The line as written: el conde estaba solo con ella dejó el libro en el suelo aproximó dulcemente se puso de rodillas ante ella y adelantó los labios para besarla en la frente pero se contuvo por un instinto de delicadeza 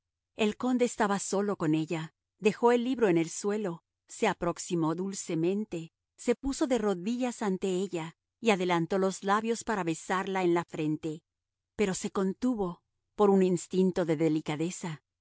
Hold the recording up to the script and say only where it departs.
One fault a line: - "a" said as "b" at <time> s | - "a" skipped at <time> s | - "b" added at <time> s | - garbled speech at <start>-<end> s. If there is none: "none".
- "se" added at 4.1 s